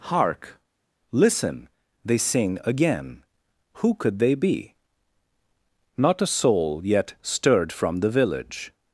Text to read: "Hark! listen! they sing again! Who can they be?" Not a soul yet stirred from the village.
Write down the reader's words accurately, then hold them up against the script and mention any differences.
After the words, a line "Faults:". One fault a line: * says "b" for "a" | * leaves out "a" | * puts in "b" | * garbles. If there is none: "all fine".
"Hark! listen! they sing again! Who could they be?" Not a soul yet stirred from the village.
Faults:
* says "could" for "can"